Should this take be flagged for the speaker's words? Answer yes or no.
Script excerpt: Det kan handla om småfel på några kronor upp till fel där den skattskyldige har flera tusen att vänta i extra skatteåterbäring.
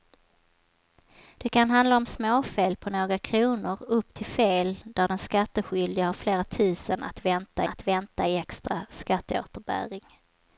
yes